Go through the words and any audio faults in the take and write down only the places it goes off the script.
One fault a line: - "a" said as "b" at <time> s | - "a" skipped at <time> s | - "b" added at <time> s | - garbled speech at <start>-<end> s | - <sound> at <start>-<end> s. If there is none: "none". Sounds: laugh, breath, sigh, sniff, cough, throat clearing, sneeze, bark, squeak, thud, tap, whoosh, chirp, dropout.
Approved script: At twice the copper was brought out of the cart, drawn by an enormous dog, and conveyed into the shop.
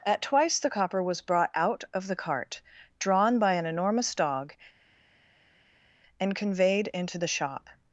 none